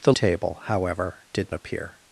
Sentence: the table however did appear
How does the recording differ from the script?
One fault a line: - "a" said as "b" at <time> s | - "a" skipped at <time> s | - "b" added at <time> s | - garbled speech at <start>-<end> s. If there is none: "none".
none